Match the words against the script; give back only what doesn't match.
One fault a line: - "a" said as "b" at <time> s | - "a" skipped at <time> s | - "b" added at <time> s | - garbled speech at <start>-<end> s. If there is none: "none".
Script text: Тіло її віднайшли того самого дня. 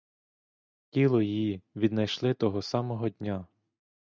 none